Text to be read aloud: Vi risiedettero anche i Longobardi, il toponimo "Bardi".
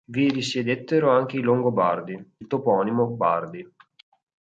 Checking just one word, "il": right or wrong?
right